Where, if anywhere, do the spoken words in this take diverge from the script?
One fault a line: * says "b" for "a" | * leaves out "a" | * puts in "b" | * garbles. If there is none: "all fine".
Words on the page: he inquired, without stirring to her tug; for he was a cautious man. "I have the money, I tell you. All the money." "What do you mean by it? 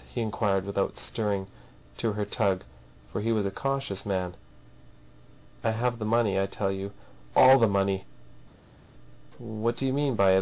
all fine